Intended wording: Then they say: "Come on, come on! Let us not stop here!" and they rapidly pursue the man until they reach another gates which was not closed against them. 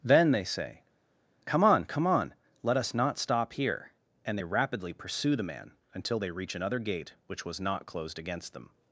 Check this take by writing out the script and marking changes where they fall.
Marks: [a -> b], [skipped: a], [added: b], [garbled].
Then they say: "Come on, come on! Let us not stop here!" and they rapidly pursue the man until they reach another [gates -> gate] which was not closed against them.